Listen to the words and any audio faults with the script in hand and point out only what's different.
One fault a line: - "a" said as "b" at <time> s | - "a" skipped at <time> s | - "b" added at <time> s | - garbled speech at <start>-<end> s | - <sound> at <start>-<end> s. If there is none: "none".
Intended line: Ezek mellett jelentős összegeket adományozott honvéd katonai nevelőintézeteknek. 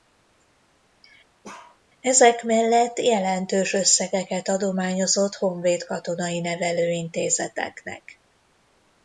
- bark at 1.4-1.8 s